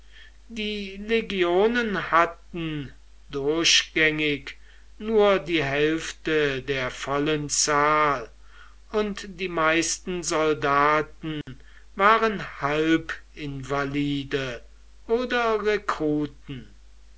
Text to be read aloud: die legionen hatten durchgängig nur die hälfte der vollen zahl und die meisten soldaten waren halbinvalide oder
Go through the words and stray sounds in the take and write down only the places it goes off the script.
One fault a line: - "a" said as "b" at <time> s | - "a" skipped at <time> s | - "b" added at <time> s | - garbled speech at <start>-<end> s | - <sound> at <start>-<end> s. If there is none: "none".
- dropout at 11.4-11.5 s